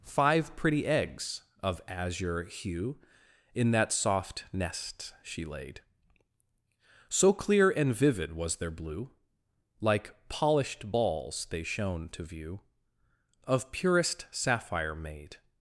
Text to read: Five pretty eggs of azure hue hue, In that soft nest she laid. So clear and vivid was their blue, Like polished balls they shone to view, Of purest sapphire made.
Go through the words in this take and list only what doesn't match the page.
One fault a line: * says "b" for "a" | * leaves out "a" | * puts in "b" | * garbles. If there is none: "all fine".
* leaves out "hue"